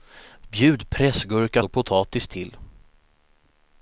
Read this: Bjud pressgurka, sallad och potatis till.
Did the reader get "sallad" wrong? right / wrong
wrong